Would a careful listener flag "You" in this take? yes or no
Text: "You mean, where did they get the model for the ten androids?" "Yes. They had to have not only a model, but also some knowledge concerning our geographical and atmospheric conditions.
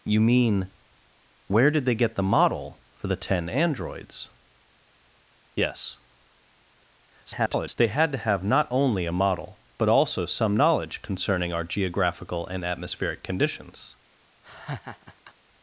no